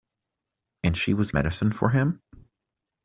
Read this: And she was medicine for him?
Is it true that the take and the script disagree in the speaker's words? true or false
false